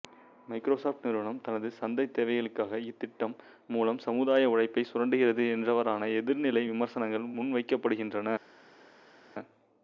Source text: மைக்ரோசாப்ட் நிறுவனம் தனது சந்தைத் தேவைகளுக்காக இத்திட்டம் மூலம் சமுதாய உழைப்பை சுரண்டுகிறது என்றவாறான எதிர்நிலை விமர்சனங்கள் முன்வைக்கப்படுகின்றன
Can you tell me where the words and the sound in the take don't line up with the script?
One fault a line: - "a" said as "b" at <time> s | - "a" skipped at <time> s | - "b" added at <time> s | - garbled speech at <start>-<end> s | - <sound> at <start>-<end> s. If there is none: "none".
none